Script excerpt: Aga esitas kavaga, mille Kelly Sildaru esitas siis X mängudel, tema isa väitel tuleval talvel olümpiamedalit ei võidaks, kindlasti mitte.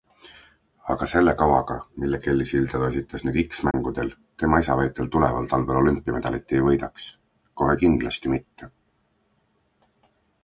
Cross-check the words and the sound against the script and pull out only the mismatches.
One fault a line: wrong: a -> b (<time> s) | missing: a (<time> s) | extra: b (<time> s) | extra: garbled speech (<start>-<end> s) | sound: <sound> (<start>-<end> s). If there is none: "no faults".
wrong: esitas -> selle (1.1 s)
wrong: siis -> nüüd (3.3 s)
sound: dropout (3.7-3.7 s)
extra: kohe (7.6 s)